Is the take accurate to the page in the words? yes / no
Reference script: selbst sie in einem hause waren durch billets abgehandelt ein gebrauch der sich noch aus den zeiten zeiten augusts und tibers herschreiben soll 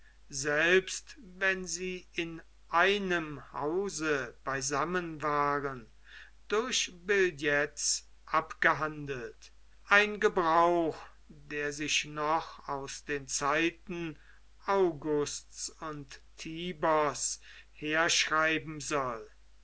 no